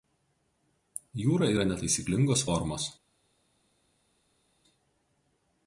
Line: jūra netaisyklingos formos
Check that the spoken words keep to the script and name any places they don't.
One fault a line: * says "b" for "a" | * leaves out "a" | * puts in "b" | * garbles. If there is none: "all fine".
* puts in "yra"